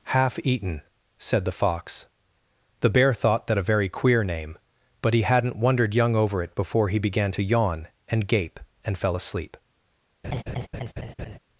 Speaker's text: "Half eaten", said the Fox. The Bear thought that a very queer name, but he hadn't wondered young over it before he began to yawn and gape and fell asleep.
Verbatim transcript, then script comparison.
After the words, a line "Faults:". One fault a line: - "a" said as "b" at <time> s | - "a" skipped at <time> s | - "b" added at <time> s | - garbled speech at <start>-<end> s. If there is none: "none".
"Half eaten", said the Fox. The Bear thought that a very queer name, but he hadn't wondered young over it before he began to yawn and gape and fell asleep.
Faults:
none